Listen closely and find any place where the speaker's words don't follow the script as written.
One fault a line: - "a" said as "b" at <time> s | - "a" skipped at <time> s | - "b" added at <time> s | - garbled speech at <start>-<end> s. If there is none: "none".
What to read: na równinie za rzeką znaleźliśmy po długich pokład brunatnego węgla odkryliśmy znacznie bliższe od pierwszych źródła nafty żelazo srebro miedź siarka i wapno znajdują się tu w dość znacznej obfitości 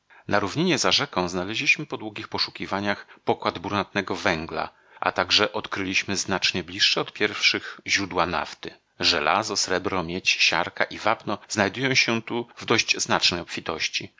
- "poszukiwaniach" added at 2.3 s
- "a także" added at 5.0 s